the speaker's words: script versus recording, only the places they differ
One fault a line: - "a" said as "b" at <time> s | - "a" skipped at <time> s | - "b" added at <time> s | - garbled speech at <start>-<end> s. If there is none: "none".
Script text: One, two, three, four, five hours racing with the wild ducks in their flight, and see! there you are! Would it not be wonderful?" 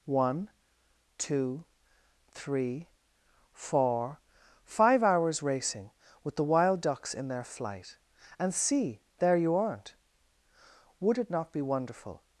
- "are" said as "aren't" at 9.6 s